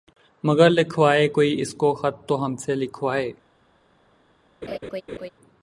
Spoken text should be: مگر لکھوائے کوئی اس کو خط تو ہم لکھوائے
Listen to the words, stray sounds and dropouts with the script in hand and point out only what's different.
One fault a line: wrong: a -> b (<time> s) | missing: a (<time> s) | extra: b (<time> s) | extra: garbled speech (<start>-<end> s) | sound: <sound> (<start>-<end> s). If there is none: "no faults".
extra: سے (2.6 s)
sound: laugh (4.6-5.3 s)